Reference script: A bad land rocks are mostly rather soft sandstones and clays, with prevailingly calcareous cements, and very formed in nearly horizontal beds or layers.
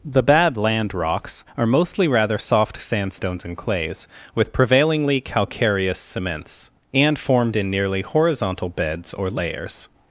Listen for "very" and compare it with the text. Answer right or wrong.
wrong